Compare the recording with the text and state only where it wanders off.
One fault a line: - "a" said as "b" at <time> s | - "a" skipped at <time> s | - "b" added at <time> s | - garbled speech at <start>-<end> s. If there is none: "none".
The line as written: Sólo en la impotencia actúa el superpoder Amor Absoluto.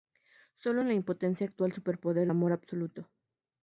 none